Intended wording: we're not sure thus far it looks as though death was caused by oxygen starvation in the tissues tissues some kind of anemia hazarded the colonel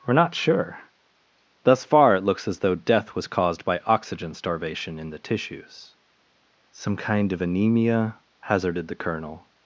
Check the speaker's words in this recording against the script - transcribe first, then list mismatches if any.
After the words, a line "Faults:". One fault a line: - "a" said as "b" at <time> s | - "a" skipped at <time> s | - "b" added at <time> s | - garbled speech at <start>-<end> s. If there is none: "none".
we're not sure thus far it looks as though death was caused by oxygen starvation in the tissues some kind of anemia hazarded the colonel
Faults:
- "tissues" skipped at 6.0 s